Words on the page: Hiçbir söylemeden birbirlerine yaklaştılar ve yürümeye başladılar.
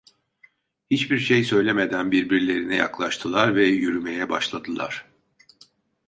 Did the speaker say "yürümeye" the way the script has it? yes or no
yes